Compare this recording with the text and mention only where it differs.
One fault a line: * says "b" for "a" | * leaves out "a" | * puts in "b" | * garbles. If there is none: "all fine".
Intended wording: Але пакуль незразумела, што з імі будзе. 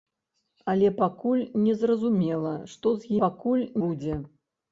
* says "пакуль" for "імі"